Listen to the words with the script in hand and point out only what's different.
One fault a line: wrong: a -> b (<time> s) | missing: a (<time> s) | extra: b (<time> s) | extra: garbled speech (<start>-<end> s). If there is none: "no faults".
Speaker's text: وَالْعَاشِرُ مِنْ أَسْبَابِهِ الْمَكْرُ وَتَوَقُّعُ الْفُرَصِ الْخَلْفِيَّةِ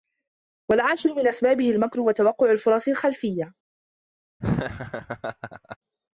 no faults